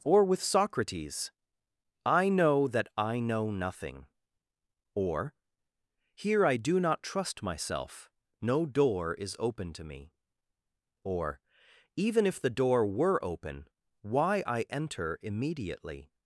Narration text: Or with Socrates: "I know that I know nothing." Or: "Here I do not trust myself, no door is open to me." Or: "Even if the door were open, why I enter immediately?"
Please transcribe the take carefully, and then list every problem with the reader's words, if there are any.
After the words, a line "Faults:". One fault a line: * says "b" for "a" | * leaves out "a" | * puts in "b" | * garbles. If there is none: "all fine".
Or with Socrates: "I know that I know nothing." Or: "Here I do not trust myself, no door is open to me." Or: "Even if the door were open, why I enter immediately?"
Faults:
all fine